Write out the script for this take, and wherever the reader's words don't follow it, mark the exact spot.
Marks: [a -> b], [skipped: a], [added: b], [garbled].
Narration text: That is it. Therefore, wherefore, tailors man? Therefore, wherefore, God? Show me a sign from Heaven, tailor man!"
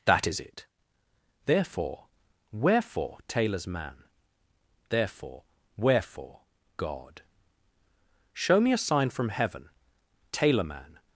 That is it. Therefore, wherefore, tailors man? Therefore, wherefore, God? Show me a sign from Heaven, tailor man!"